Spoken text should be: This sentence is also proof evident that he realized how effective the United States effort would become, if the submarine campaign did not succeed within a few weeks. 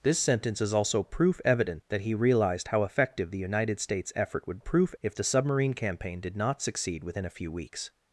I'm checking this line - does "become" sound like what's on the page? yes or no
no